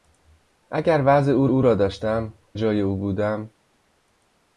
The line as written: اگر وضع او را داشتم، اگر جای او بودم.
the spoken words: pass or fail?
fail